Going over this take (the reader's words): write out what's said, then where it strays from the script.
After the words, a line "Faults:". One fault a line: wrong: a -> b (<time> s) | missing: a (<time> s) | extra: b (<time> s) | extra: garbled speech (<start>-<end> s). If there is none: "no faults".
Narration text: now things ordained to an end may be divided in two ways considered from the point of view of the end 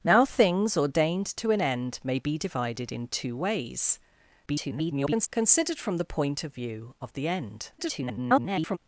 now things ordained to an end may be divided in two ways [garbled] considered from the point of view of the end [garbled]
Faults:
extra: garbled speech (4.5-5.3 s)
extra: garbled speech (7.8-8.8 s)